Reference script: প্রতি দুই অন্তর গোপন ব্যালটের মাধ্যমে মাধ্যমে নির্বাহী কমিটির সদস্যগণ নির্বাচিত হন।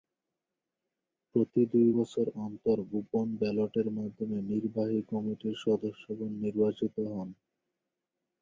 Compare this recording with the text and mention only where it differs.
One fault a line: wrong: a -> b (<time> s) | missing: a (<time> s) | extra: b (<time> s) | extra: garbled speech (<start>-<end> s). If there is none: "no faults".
extra: বছর (2.0 s)
missing: মাধ্যমে (4.4 s)